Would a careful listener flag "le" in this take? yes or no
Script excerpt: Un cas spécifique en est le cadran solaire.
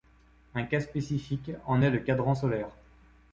no